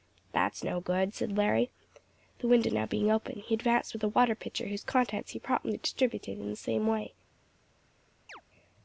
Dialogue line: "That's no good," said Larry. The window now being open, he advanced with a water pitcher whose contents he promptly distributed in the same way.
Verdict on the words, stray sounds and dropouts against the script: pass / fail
fail